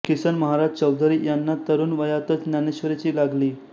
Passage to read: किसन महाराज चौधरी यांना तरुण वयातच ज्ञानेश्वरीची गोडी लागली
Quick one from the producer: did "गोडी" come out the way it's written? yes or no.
no